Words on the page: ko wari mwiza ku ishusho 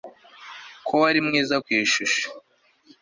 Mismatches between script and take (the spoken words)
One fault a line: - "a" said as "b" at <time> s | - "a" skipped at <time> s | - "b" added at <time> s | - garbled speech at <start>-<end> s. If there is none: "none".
none